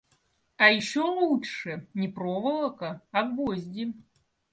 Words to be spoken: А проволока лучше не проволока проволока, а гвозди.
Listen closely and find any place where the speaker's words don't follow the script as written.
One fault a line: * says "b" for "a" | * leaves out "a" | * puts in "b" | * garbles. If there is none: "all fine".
* says "еще" for "проволока"
* leaves out "проволока"